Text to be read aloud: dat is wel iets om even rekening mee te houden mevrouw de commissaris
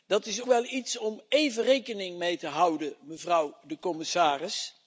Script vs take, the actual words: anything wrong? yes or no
no